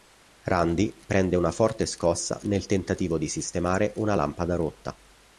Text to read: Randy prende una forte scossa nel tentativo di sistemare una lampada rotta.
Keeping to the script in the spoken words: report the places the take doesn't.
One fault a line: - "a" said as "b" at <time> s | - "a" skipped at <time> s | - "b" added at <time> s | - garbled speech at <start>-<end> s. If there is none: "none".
none